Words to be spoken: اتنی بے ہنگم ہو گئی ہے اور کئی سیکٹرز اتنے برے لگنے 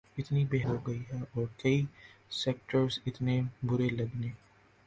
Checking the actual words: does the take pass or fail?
fail